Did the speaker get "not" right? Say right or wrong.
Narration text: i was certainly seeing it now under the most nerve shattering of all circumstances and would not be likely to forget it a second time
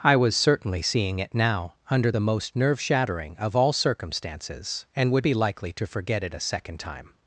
wrong